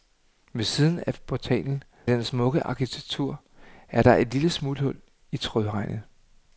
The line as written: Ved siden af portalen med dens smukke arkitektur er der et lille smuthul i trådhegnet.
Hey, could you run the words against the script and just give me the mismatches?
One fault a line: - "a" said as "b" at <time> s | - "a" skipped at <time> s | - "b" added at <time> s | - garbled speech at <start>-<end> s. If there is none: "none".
- "med" skipped at 1.8 s